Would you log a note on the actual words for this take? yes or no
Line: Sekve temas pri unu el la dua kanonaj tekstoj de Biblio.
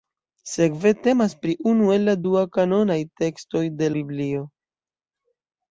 no